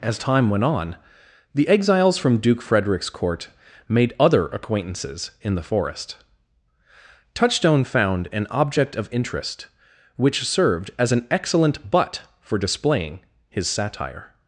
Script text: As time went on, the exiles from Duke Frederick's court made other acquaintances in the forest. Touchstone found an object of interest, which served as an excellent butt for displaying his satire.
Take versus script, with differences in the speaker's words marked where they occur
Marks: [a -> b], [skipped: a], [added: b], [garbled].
As time went on, the exiles from Duke Frederick's court made other acquaintances in the forest. Touchstone found an object of interest, which served as an excellent butt for displaying his satire.